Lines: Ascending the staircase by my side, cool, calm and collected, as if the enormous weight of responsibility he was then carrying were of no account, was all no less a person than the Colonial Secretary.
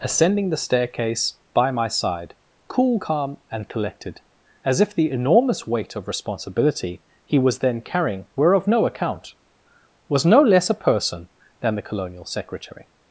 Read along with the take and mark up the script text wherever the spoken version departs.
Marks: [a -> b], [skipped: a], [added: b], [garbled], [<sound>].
Ascending the staircase by my side, cool, calm and collected, as if the enormous weight of responsibility he was then carrying were of no account, was [skipped: all] no less a person than the Colonial Secretary.